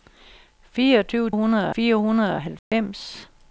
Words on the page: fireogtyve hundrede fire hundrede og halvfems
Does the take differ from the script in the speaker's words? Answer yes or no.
no